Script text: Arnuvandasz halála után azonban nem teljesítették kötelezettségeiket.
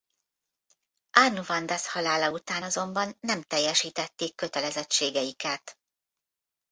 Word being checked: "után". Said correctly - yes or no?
yes